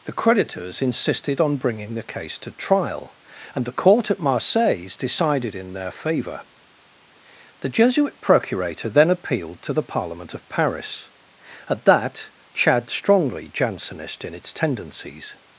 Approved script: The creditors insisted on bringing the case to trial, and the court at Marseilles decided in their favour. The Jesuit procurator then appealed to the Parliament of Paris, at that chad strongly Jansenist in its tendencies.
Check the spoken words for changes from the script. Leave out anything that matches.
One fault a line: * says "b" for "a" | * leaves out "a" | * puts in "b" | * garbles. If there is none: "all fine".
all fine